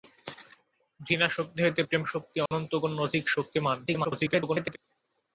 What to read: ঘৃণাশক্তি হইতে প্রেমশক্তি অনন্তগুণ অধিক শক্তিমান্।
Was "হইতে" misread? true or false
false